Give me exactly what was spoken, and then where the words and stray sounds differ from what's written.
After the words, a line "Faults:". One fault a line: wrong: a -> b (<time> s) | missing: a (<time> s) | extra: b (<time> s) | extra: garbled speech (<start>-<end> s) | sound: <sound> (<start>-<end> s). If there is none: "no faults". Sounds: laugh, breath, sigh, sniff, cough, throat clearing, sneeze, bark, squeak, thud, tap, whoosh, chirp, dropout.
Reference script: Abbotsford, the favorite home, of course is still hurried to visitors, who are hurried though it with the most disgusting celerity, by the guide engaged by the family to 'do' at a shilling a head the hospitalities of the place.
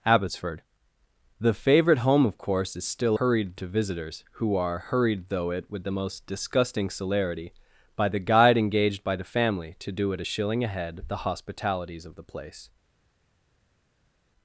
Abbotsford, the favorite home, of course is still hurried to visitors, who are hurried though it with the most disgusting celerity, by the guide engaged by the family to 'do' at a shilling a head the hospitalities of the place.
Faults:
no faults